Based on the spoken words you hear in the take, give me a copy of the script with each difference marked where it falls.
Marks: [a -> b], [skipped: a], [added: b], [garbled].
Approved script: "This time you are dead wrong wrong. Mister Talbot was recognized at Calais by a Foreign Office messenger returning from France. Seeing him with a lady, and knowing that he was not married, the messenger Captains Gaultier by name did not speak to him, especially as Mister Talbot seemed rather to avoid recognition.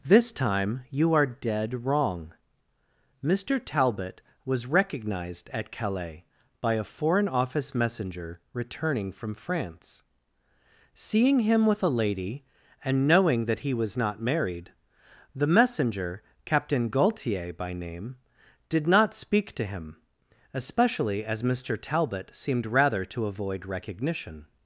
"This time you are dead wrong [skipped: wrong.] Mister Talbot was recognized at Calais by a Foreign Office messenger returning from France. Seeing him with a lady, and knowing that he was not married, the messenger [Captains -> Captain] Gaultier by name did not speak to him, especially as Mister Talbot seemed rather to avoid recognition.